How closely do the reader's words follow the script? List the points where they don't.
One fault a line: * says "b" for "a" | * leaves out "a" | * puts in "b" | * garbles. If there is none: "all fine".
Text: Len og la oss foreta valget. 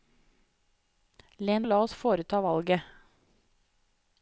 all fine